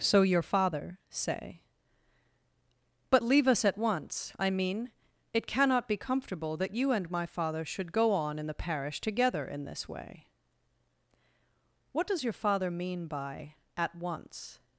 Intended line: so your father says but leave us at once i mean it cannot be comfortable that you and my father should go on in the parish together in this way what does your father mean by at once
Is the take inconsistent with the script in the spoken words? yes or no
yes